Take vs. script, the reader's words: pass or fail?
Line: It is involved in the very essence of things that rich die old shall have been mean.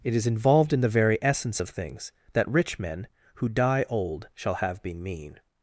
fail